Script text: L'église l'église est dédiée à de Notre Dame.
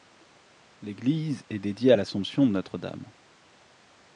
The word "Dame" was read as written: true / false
true